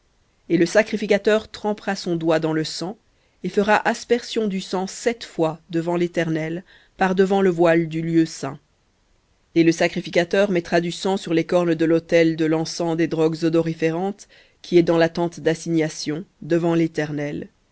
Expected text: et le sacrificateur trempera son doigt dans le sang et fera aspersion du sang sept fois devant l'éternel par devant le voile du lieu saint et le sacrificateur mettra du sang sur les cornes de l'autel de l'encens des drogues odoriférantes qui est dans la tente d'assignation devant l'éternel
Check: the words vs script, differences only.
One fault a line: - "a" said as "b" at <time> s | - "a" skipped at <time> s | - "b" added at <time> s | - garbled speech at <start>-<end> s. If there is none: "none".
none